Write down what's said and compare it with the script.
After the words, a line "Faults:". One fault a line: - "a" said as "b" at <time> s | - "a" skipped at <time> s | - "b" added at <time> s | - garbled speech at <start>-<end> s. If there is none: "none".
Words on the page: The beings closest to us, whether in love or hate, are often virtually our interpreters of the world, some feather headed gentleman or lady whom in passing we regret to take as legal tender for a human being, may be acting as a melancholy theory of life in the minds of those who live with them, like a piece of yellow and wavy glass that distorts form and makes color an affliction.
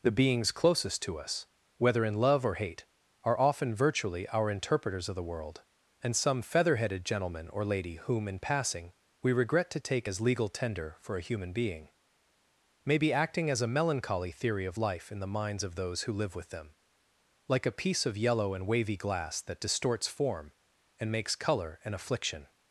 The beings closest to us, whether in love or hate, are often virtually our interpreters of the world, and some feather headed gentleman or lady whom in passing we regret to take as legal tender for a human being, may be acting as a melancholy theory of life in the minds of those who live with them, like a piece of yellow and wavy glass that distorts form and makes color an affliction.
Faults:
- "and" added at 6.0 s